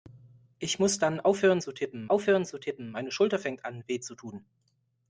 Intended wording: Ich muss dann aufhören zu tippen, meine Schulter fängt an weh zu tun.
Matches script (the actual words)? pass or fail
fail